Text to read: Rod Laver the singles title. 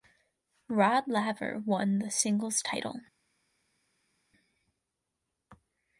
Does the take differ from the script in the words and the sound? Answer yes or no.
yes